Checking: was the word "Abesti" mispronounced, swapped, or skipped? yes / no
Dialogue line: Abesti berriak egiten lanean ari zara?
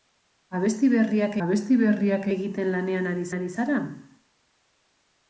no